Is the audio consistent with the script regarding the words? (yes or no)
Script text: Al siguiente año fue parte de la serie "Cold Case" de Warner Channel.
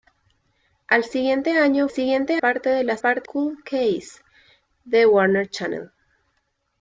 no